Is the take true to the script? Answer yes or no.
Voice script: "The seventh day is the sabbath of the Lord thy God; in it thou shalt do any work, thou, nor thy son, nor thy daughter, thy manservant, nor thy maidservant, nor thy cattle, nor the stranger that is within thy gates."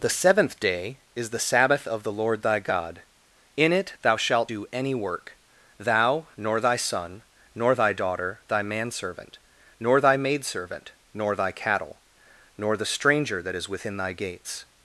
yes